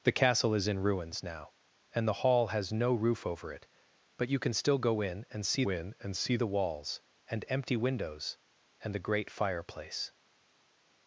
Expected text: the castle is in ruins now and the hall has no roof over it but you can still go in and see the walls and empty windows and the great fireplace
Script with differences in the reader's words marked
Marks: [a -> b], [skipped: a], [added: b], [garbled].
the castle is in ruins now and the hall has no roof over it but you can still go in and see [added: in and see] the walls and empty windows and the great fireplace